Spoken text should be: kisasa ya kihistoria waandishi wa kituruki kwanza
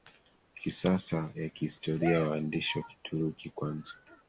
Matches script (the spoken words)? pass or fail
pass